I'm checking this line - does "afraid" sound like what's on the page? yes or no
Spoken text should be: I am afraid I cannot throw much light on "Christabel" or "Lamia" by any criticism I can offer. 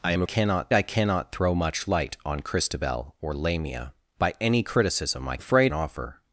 no